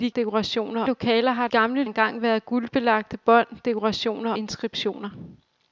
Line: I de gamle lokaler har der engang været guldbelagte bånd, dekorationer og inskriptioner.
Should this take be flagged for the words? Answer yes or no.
yes